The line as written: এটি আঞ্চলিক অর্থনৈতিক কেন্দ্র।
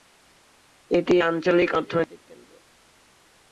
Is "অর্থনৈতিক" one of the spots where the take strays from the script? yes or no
no